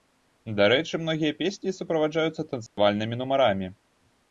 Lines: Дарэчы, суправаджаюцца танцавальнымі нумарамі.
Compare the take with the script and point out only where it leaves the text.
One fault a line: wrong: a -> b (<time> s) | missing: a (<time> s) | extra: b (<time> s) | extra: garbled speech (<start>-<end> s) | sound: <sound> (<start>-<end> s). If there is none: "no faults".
extra: многія песні (1.0 s)
sound: dropout (2.7-2.8 s)